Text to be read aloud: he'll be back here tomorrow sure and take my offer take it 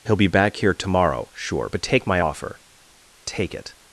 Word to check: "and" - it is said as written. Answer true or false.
false